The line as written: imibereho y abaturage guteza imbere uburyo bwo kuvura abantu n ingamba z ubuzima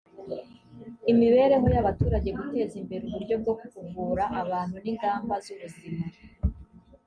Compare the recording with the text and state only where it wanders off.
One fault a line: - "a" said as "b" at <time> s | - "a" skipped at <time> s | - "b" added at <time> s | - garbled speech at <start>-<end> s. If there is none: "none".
none